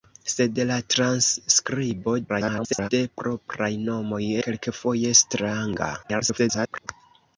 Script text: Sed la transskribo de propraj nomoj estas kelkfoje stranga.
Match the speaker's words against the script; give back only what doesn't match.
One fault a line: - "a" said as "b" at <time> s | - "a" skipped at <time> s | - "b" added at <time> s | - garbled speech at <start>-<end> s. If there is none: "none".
- garbled speech at 2.3-2.9 s
- "estas" skipped at 4.2 s
- garbled speech at 6.0-6.9 s